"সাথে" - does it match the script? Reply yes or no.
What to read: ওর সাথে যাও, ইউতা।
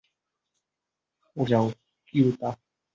no